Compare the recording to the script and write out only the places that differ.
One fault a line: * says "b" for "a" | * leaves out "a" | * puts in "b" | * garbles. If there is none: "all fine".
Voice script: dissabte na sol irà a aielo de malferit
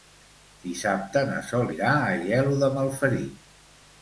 all fine